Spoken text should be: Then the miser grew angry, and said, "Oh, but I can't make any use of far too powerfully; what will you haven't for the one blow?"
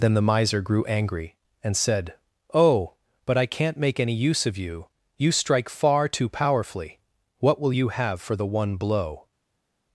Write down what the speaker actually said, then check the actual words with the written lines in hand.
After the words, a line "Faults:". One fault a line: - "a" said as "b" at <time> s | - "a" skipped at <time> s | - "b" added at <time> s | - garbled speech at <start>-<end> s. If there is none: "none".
Then the miser grew angry, and said, "Oh, but I can't make any use of you, you strike far too powerfully; what will you have for the one blow?"
Faults:
- "you you strike" added at 4.6 s
- "haven't" said as "have" at 7.9 s